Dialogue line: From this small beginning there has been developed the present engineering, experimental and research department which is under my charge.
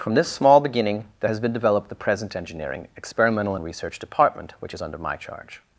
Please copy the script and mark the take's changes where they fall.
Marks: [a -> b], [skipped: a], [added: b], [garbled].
From this small beginning there has been developed the present engineering, experimental and research department which is under my charge.